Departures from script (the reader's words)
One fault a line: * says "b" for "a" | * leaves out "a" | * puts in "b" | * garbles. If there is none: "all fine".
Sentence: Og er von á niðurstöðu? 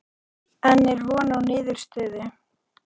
* says "En" for "Og"